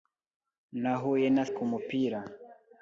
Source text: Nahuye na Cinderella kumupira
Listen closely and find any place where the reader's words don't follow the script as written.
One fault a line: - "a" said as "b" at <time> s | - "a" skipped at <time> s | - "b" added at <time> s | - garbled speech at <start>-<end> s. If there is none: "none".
- "Cinderella" skipped at 1.4 s